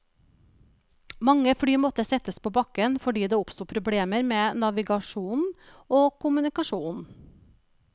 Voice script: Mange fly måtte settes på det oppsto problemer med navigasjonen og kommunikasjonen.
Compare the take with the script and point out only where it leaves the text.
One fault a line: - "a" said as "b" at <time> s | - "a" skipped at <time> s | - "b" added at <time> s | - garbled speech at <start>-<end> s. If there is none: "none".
- "bakken fordi" added at 2.6 s